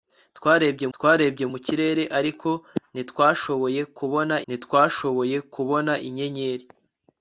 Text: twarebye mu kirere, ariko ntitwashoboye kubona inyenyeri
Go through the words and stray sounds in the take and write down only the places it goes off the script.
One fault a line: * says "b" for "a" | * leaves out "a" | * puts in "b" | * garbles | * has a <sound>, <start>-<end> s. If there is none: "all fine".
* puts in "twarebye"
* puts in "ntitwashoboye kubona"